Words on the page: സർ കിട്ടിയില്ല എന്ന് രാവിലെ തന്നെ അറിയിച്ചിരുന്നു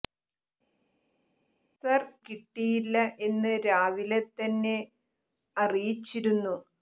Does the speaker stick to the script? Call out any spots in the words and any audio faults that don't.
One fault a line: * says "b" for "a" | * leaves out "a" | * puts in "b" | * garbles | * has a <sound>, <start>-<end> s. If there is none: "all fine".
all fine